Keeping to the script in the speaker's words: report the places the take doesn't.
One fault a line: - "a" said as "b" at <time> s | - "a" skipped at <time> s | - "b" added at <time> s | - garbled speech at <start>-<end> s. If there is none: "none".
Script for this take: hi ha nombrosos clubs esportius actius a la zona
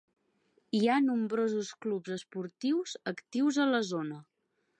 none